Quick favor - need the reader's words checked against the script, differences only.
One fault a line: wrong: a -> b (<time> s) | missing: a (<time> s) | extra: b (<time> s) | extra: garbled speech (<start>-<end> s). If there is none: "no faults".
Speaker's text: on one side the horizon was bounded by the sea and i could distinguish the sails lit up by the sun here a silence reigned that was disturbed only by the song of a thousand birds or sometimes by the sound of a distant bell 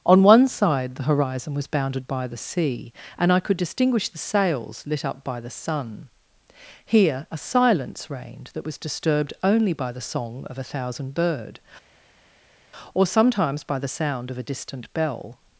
wrong: birds -> bird (11.1 s)